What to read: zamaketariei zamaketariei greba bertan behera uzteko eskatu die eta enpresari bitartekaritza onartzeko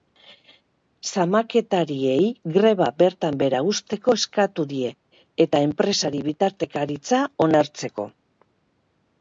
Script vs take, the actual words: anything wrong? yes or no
yes